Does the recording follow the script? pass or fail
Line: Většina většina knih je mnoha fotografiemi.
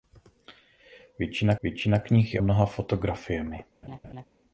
pass